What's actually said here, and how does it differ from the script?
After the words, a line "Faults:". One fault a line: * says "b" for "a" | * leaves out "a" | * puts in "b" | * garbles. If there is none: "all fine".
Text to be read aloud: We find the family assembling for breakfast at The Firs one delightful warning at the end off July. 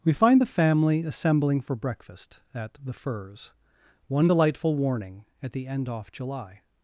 We find the family assembling for breakfast at The Firs one delightful warning at the end off July.
Faults:
all fine